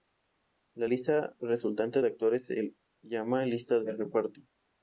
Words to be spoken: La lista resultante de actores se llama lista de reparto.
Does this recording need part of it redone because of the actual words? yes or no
no